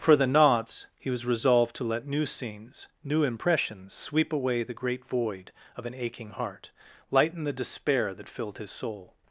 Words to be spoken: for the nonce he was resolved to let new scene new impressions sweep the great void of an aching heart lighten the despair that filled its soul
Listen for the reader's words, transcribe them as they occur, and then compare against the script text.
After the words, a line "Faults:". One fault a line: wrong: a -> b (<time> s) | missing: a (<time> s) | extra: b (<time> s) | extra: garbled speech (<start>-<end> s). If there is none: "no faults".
for the nonce he was resolved to let new scenes new impressions sweep away the great void of an aching heart lighten the despair that filled his soul
Faults:
wrong: scene -> scenes (2.2 s)
extra: away (4.3 s)
wrong: its -> his (8.6 s)